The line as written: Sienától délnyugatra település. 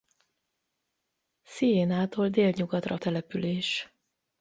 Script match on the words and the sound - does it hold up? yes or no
yes